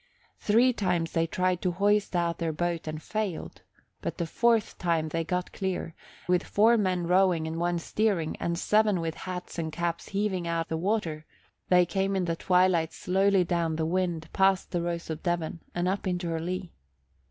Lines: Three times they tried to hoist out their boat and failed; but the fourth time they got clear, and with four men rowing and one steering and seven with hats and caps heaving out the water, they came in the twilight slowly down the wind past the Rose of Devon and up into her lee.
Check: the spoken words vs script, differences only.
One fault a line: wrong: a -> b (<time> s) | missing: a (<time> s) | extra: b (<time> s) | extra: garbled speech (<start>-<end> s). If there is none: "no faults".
missing: and (5.9 s)